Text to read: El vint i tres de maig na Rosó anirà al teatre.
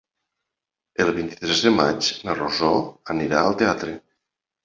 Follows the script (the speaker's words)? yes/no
yes